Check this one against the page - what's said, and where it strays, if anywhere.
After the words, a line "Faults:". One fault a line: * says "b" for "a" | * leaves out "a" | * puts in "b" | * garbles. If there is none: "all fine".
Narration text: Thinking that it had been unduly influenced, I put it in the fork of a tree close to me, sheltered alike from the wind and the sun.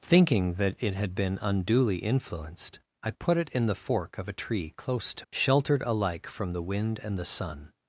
Thinking that it had been unduly influenced, I put it in the fork of a tree close to sheltered alike from the wind and the sun.
Faults:
* leaves out "me"